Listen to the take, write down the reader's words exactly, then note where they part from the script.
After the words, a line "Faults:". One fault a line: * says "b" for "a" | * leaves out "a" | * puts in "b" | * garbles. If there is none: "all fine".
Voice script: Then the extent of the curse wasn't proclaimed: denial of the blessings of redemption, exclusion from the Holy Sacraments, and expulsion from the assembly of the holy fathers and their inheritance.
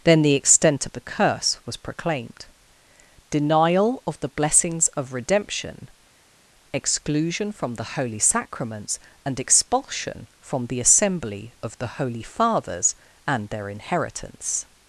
Then the extent of the curse was proclaimed: denial of the blessings of redemption, exclusion from the Holy Sacraments, and expulsion from the assembly of the holy fathers and their inheritance.
Faults:
* says "was" for "wasn't"